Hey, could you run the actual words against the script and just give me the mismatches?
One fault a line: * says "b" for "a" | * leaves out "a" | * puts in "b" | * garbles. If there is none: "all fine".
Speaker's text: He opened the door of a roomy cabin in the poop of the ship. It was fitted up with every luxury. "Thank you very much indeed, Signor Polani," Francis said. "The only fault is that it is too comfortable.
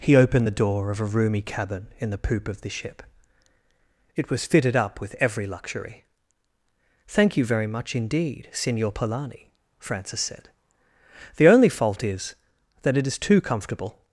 all fine